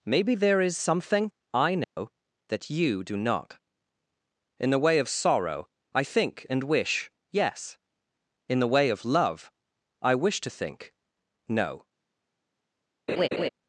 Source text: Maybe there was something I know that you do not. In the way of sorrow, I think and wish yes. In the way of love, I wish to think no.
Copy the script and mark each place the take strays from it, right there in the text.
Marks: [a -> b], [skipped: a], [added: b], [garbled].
Maybe there [was -> is] something I know that you do not. In the way of sorrow, I think and wish yes. In the way of love, I wish to think no.